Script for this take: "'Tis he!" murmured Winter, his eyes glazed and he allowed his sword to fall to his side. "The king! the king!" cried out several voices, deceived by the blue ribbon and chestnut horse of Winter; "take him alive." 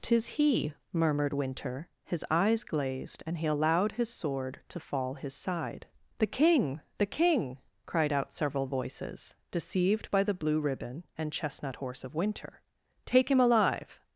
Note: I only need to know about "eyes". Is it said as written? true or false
true